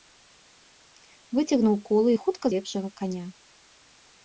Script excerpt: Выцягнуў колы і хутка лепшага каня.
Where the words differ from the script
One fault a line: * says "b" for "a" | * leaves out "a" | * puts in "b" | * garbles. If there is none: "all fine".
all fine